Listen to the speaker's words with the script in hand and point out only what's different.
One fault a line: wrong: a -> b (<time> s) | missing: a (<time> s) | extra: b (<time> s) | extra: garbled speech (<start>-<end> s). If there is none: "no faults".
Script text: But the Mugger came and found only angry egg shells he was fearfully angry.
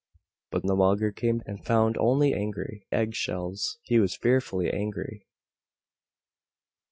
no faults